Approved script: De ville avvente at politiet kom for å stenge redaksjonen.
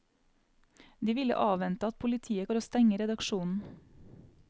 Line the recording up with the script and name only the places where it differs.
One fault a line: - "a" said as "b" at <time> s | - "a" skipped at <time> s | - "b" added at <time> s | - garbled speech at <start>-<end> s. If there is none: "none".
- "kom" skipped at 2.5 s